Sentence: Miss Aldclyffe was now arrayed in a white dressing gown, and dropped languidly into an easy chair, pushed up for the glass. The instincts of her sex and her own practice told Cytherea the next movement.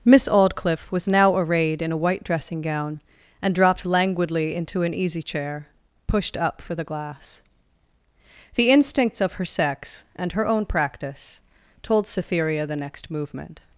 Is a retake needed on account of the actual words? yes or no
no